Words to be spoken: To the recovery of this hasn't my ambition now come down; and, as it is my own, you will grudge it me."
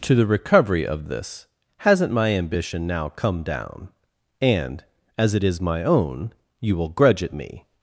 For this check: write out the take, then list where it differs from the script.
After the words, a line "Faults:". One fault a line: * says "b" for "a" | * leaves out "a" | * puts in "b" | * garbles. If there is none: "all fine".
To the recovery of this hasn't my ambition now come down; and, as it is my own, you will grudge it me."
Faults:
all fine